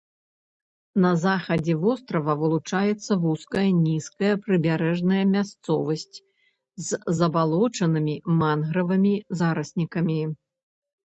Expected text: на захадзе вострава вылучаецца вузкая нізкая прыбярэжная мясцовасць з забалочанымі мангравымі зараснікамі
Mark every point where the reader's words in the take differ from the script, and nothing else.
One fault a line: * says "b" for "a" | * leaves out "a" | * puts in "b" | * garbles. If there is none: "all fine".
all fine